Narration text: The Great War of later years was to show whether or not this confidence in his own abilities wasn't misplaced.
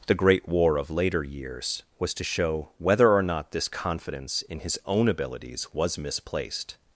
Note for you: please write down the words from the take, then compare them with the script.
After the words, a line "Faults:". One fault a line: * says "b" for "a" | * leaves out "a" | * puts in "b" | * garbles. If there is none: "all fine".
The Great War of later years was to show whether or not this confidence in his own abilities was misplaced.
Faults:
* says "was" for "wasn't"